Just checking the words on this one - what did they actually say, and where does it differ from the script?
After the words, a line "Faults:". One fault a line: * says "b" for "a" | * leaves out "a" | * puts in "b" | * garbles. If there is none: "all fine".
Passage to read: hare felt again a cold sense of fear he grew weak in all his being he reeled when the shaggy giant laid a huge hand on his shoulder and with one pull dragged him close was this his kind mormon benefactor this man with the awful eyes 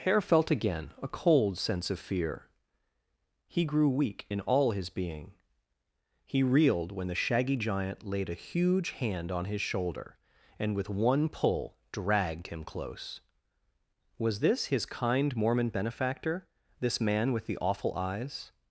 hare felt again a cold sense of fear he grew weak in all his being he reeled when the shaggy giant laid a huge hand on his shoulder and with one pull dragged him close was this his kind mormon benefactor this man with the awful eyes
Faults:
all fine